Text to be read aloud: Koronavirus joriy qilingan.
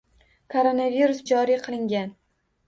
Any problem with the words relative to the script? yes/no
no